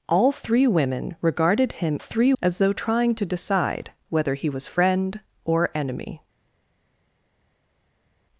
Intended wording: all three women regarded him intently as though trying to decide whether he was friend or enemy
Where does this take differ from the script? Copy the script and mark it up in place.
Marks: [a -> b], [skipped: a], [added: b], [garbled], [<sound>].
all three women regarded him [intently -> three] as though trying to decide whether he was friend or enemy